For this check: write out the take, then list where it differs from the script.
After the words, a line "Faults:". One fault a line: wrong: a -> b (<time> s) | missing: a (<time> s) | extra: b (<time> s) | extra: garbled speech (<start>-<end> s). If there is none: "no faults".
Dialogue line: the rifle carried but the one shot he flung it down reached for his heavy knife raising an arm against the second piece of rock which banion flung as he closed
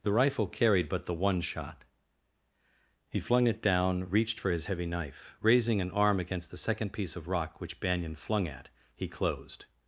the rifle carried but the one shot he flung it down reached for his heavy knife raising an arm against the second piece of rock which banion flung at he closed
Faults:
wrong: as -> at (8.5 s)